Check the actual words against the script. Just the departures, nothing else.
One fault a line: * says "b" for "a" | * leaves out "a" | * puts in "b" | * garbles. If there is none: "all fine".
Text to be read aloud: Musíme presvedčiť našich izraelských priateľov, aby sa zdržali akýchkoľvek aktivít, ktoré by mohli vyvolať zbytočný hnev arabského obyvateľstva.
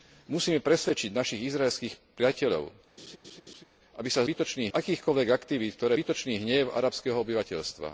* says "zbytočný" for "zdržali"
* leaves out "by mohli vyvolať"